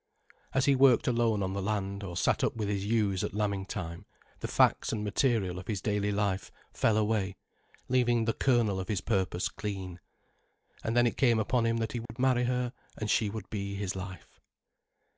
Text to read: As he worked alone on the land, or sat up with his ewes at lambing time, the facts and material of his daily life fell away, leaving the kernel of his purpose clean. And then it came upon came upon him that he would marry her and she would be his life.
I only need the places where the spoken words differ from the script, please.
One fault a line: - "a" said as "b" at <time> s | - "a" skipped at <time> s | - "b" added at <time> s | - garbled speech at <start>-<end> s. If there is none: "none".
- "came upon" skipped at 11.7 s